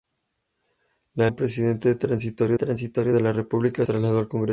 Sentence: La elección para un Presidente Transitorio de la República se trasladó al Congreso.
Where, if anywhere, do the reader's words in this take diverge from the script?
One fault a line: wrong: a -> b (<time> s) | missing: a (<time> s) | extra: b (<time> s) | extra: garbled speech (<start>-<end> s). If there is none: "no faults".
missing: elección para (1.3 s)
extra: Transitorio (2.5 s)
missing: se (3.8 s)